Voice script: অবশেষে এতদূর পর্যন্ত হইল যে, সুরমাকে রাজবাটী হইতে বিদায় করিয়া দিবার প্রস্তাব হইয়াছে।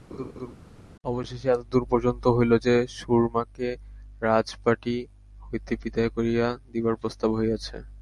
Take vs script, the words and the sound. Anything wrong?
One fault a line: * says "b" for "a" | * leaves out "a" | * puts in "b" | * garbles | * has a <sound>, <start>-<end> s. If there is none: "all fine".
* has a laugh, 0.1-0.6 s